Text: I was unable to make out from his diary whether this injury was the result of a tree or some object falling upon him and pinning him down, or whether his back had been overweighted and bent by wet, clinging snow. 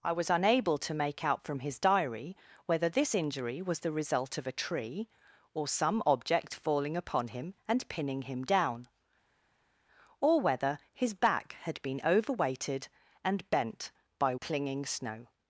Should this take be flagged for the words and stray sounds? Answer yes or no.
yes